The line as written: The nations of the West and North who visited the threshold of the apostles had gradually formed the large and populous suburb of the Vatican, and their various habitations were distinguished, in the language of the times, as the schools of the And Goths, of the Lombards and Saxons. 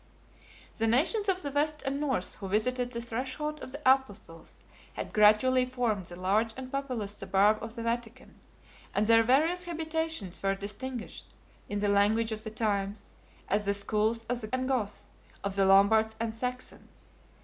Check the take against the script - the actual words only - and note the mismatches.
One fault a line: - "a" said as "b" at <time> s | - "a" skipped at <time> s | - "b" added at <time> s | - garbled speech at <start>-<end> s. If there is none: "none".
none